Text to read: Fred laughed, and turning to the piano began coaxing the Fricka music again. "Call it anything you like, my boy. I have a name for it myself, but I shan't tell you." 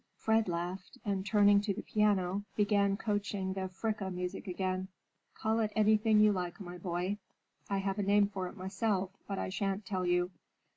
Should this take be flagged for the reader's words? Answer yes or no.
no